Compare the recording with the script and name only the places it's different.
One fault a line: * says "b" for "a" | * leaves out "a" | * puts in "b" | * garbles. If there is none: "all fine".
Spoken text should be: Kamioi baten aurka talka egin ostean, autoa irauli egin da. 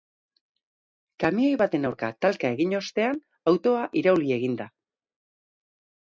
all fine